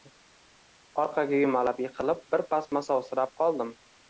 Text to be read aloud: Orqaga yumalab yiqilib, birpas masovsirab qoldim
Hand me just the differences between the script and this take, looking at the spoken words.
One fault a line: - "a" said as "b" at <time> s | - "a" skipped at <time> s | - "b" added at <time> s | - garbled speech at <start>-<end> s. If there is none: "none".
none